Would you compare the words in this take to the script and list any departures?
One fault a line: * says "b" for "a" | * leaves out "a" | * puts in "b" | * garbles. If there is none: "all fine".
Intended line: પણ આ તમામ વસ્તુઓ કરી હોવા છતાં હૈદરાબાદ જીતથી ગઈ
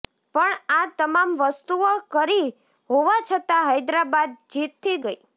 all fine